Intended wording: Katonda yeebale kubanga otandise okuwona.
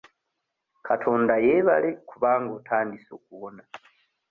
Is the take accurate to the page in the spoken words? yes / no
yes